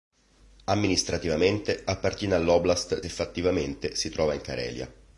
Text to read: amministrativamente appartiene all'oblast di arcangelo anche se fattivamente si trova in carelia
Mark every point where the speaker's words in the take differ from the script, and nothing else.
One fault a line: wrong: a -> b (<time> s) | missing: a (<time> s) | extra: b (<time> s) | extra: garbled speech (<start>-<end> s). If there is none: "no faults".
missing: di arcangelo anche (3.0 s)